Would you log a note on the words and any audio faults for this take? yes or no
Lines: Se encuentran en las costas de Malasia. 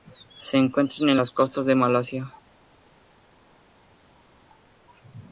no